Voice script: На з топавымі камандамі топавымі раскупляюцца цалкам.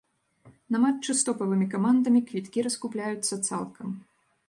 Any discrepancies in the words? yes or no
yes